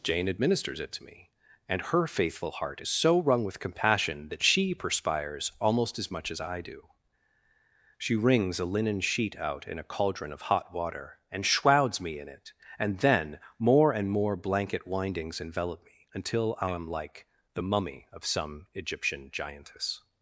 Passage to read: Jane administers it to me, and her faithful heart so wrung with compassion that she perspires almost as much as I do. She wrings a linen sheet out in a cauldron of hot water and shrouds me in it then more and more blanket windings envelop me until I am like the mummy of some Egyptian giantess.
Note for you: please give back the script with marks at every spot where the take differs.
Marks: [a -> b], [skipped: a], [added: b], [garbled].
Jane administers it to me, and her faithful heart [added: is] so wrung with compassion that she perspires almost as much as I do. She wrings a linen sheet out in a cauldron of hot water and shrouds me in it [added: and] then more and more blanket windings envelop me until I am like the mummy of some Egyptian giantess.